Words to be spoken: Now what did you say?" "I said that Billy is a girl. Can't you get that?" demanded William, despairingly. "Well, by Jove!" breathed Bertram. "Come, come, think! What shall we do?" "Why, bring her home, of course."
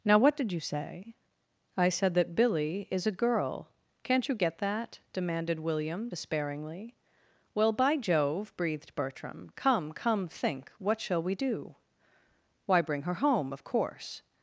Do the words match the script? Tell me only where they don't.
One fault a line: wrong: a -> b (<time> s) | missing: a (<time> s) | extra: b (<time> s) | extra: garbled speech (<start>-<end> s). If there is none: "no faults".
no faults